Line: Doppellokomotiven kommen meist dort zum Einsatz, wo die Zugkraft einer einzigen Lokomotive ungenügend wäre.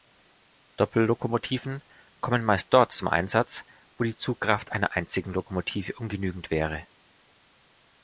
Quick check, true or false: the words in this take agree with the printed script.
true